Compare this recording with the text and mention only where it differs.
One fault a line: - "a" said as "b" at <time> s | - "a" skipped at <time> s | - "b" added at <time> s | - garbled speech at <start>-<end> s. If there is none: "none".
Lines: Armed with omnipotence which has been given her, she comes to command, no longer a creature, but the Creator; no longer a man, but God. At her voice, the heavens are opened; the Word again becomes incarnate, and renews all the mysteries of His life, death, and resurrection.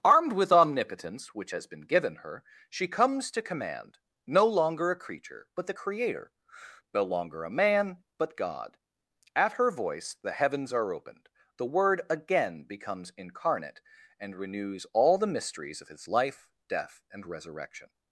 none